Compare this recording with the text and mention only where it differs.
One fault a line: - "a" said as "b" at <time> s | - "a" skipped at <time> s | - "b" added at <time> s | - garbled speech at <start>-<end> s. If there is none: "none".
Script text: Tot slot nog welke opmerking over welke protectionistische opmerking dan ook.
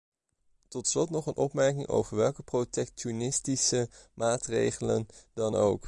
- "welke" said as "een" at 1.3 s
- "opmerking" said as "maatregelen" at 4.1 s